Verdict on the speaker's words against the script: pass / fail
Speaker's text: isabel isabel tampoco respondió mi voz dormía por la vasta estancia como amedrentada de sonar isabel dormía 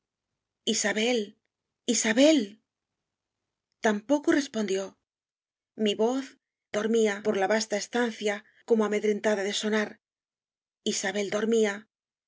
pass